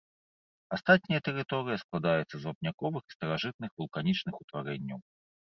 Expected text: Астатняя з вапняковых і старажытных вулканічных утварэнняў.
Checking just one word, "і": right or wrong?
right